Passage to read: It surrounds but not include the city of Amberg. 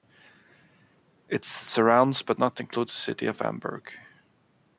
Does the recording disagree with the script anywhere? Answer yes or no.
no